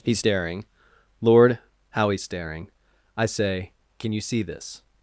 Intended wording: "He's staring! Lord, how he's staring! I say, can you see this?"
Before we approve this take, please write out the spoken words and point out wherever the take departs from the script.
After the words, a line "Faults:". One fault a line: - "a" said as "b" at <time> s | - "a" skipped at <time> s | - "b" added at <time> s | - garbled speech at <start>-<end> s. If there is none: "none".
"He's staring! Lord, how he's staring! I say, can you see this?"
Faults:
none